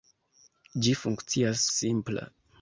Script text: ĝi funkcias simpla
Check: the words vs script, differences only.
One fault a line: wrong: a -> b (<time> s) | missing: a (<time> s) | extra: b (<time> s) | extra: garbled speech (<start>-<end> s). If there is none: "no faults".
no faults